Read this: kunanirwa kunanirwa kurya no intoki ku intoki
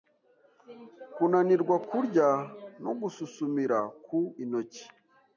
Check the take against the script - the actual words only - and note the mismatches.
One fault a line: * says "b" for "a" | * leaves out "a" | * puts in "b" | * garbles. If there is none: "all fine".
* leaves out "kunanirwa"
* says "gususumira" for "intoki"